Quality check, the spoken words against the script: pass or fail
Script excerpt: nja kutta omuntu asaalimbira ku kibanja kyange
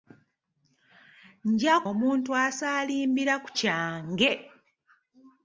fail